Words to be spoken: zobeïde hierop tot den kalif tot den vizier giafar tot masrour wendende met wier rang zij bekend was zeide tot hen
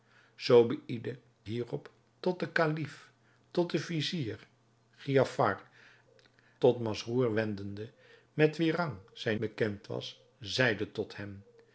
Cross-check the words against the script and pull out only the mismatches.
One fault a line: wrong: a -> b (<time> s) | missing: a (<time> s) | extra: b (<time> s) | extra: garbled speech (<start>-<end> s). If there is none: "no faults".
no faults